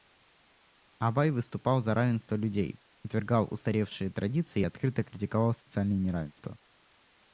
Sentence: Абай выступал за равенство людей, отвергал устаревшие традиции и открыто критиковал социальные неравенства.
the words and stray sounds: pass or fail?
pass